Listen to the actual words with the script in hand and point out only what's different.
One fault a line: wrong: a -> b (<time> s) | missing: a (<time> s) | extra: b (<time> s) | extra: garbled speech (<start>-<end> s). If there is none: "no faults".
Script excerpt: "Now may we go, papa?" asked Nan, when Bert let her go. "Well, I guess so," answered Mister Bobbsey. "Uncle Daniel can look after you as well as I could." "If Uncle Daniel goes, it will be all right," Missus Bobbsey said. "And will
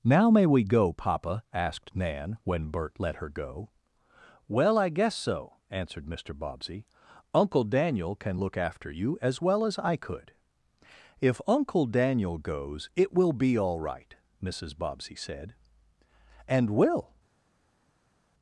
no faults